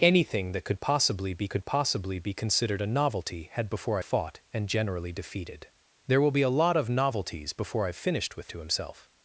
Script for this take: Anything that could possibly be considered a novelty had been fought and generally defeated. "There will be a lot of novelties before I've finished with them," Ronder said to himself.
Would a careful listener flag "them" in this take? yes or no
yes